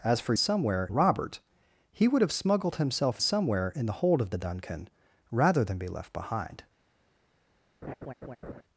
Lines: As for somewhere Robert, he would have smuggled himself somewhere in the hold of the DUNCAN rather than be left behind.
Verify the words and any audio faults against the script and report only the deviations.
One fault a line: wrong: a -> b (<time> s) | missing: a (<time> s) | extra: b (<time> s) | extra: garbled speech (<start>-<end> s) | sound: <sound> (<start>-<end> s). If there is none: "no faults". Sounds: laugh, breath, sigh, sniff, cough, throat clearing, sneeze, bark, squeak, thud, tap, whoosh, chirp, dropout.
sound: laugh (7.8-8.6 s)